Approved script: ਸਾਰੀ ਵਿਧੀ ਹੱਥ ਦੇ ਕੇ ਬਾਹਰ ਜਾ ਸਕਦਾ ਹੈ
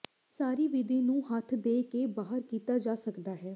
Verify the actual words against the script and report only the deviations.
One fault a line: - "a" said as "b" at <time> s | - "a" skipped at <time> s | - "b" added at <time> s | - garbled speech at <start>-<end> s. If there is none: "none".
- "ਨੂੰ" added at 1.0 s
- "ਕੀਤਾ" added at 2.4 s